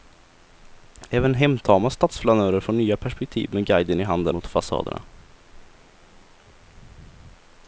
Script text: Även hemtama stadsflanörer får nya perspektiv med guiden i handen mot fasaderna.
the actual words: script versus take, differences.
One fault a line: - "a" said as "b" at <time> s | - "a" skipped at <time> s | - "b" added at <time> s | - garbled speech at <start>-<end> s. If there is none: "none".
none